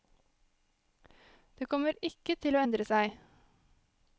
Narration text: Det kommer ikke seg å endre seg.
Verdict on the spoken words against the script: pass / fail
fail